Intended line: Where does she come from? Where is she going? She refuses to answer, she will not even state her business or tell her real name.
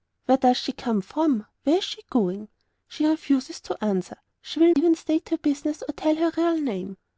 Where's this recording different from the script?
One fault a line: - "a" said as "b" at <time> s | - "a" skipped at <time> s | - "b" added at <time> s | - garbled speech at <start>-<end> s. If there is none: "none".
- "not" skipped at 4.7 s